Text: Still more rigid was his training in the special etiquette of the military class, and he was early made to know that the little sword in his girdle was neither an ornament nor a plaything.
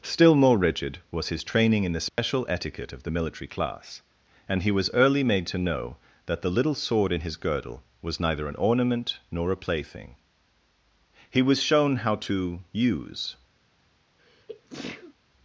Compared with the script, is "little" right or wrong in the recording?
right